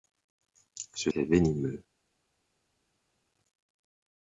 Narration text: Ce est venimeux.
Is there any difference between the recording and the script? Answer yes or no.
no